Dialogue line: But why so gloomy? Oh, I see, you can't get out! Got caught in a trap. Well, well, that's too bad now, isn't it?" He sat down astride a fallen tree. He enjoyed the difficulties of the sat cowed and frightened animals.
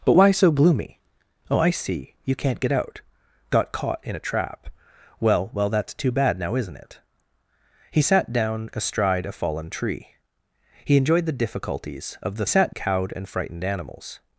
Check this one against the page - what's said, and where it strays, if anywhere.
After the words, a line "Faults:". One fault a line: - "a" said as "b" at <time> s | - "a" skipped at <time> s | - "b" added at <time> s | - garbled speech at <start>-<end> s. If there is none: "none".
But why so gloomy? Oh, I see, you can't get out! Got caught in a trap. Well, well, that's too bad now, isn't it?" He sat down astride a fallen tree. He enjoyed the difficulties of the sat cowed and frightened animals.
Faults:
none